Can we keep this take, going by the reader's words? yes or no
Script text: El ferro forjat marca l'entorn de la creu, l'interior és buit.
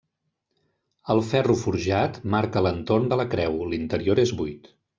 yes